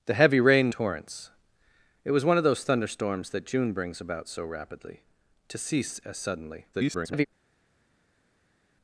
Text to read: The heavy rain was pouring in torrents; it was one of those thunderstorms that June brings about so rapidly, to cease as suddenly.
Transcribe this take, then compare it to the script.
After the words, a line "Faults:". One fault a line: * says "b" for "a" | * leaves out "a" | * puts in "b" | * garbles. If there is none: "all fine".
The heavy rain torrents; it was one of those thunderstorms that June brings about so rapidly, to cease as suddenly. [garbled]
Faults:
* leaves out "was pouring in"
* garbles